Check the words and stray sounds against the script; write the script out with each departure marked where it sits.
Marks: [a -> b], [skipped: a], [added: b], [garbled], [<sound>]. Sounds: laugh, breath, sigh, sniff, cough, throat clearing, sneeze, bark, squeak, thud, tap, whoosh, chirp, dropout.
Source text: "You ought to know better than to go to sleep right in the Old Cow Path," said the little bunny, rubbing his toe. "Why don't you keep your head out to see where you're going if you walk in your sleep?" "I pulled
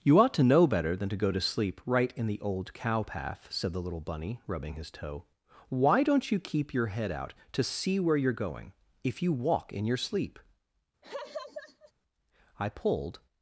"You ought to know better than to go to sleep right in the Old Cow Path," said the little bunny, rubbing his toe. "Why don't you keep your head out to see where you're going if you walk in your sleep?" [laugh] "I pulled